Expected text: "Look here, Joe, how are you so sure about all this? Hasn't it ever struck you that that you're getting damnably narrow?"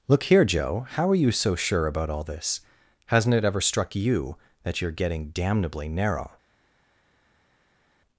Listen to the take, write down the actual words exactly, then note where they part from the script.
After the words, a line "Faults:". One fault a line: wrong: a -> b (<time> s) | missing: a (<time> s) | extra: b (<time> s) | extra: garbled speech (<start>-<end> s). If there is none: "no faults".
"Look here, Joe, how are you so sure about all this? Hasn't it ever struck you that you're getting damnably narrow?"
Faults:
missing: that (4.8 s)